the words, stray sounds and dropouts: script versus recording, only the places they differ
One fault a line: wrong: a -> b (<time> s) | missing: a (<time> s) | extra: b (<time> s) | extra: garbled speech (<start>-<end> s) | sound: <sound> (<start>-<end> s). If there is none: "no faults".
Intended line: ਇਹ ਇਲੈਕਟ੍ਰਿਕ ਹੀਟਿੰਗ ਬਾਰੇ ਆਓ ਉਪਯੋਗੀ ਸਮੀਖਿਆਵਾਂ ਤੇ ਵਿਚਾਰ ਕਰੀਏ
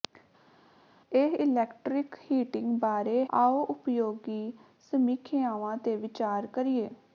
no faults